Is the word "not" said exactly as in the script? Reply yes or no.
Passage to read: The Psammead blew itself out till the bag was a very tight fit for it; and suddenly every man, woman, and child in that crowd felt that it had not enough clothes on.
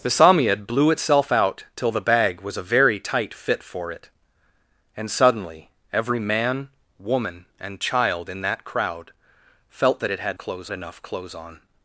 no